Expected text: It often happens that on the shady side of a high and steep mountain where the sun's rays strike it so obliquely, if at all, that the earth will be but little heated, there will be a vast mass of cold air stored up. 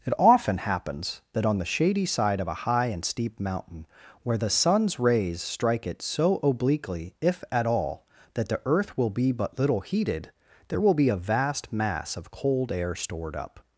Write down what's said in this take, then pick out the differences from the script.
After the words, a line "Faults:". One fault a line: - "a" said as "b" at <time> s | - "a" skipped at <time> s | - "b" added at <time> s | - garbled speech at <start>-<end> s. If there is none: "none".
It often happens that on the shady side of a high and steep mountain where the sun's rays strike it so obliquely, if at all, that the earth will be but little heated, there will be a vast mass of cold air stored up.
Faults:
none